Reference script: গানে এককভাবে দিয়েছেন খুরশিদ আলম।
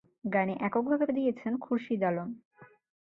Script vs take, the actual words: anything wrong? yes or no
no